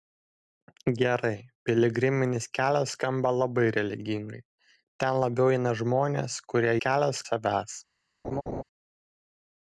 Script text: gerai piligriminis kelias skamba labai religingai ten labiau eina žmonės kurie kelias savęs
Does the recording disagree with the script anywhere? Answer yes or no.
no